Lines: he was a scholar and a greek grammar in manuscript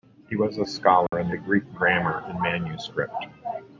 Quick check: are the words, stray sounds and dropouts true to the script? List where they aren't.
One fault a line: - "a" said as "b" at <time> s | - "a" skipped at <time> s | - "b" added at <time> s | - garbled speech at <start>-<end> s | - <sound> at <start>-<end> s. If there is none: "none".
- dropout at 1.1-1.1 s